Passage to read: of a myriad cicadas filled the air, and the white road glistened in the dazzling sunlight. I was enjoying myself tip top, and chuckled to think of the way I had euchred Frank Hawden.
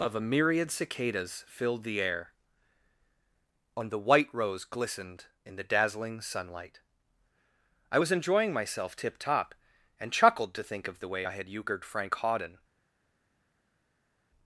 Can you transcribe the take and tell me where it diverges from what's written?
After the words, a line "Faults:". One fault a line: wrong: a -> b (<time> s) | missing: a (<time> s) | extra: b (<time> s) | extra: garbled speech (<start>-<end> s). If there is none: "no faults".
of a myriad cicadas filled the air, and the white rose glistened in the dazzling sunlight. I was enjoying myself tip top, and chuckled to think of the way I had euchred Frank Hawden.
Faults:
wrong: road -> rose (4.3 s)